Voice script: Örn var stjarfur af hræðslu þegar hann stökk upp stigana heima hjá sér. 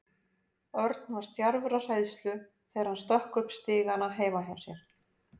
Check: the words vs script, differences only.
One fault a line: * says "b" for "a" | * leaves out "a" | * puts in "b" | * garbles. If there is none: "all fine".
all fine